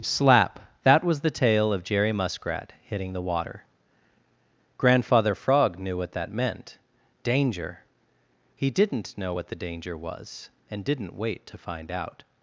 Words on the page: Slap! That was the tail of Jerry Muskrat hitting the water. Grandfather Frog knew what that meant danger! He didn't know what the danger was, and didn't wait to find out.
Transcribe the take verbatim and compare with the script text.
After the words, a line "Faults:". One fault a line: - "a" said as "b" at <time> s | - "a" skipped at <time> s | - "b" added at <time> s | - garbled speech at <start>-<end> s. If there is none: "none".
Slap! That was the tail of Jerry Muskrat hitting the water. Grandfather Frog knew what that meant danger! He didn't know what the danger was, and didn't wait to find out.
Faults:
none